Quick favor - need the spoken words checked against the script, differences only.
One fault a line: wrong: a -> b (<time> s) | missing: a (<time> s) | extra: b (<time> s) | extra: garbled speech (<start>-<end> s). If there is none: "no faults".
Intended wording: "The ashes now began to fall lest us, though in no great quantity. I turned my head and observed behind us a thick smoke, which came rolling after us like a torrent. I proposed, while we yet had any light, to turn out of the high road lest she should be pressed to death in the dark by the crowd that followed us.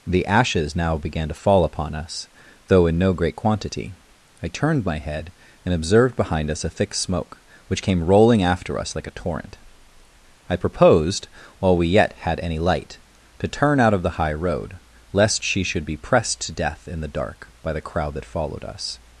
wrong: lest -> upon (1.6 s)